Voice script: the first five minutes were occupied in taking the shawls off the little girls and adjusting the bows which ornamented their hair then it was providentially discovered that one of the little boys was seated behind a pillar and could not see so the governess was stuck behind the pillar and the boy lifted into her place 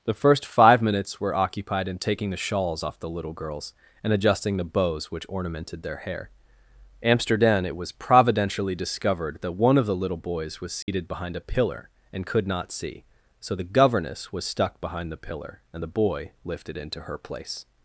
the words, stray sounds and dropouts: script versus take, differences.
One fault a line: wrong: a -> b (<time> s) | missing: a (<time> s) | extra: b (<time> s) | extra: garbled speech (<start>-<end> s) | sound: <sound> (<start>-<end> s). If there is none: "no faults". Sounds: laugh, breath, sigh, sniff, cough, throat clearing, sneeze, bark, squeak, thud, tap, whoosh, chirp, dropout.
wrong: then -> amsterdam (7.0 s)
sound: dropout (10.8-10.9 s)